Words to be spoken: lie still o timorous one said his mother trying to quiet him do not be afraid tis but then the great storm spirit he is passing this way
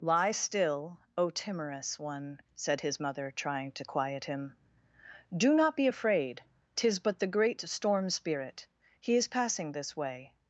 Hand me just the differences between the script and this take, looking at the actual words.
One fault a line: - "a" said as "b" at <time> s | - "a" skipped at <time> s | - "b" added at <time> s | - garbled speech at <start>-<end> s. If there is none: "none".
- "then" skipped at 7.2 s